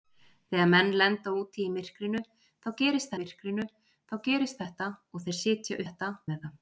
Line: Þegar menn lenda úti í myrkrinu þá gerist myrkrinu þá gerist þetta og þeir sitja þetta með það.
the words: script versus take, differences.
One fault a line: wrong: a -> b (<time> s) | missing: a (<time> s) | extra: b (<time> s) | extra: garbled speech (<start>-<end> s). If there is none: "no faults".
no faults